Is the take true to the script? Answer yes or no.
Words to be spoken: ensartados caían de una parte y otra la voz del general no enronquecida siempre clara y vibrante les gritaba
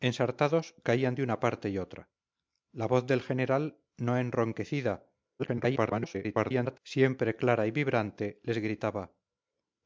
no